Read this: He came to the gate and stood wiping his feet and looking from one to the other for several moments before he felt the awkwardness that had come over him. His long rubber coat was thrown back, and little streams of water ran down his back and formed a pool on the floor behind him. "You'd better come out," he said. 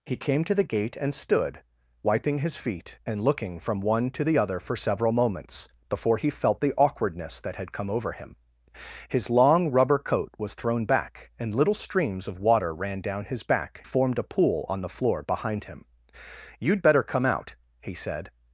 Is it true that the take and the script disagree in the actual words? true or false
true